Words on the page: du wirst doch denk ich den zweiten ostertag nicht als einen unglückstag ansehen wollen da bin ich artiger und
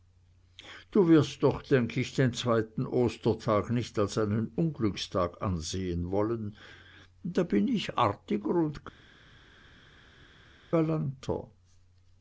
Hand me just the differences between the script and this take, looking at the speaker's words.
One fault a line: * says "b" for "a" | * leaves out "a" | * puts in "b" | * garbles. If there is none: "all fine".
all fine